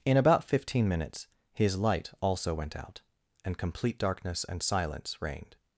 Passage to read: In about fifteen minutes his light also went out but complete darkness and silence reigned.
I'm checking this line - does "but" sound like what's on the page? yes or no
no